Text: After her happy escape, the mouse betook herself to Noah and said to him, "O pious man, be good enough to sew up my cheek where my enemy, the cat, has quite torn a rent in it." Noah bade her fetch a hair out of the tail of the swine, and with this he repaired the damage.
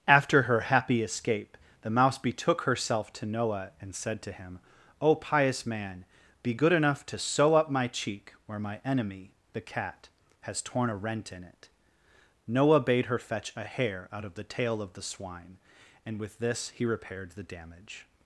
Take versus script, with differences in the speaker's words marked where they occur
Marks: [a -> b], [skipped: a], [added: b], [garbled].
After her happy escape, the mouse betook herself to Noah and said to him, "O pious man, be good enough to sew up my cheek where my enemy, the cat, has [skipped: quite] torn a rent in it." Noah bade her fetch a hair out of the tail of the swine, and with this he repaired the damage.